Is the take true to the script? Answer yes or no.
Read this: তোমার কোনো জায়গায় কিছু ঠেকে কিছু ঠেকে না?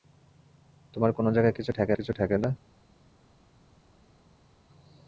yes